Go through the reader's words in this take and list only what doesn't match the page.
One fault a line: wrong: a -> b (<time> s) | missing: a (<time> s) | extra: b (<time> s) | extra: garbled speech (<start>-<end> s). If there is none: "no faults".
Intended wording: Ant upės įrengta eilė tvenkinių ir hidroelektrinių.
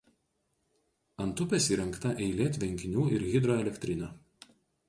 no faults